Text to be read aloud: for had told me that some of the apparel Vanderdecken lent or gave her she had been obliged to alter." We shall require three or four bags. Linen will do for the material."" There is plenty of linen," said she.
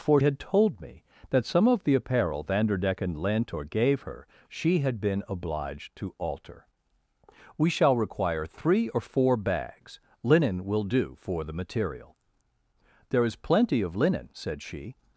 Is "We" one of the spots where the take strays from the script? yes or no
no